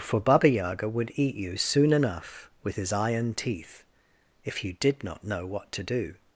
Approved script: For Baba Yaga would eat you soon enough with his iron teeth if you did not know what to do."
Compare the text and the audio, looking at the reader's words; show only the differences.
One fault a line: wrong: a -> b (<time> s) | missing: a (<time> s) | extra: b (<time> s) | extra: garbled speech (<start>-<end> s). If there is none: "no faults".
no faults